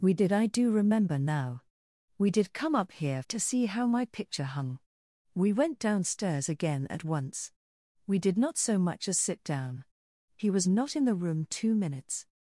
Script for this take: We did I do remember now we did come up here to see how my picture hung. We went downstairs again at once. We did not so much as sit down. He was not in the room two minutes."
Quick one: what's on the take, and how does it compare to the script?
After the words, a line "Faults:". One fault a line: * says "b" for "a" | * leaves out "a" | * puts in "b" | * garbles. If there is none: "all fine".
We did I do remember now we did come up here to see how my picture hung. We went downstairs again at once. We did not so much as sit down. He was not in the room two minutes."
Faults:
all fine